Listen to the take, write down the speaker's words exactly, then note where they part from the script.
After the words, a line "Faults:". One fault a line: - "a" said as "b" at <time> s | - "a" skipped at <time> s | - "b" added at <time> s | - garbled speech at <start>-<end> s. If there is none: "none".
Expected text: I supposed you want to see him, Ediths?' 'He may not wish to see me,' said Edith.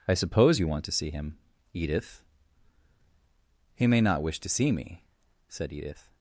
I suppose you want to see him, Edith?' 'He may not wish to see me,' said Edith.
Faults:
- "supposed" said as "suppose" at 0.1 s
- "Ediths" said as "Edith" at 1.7 s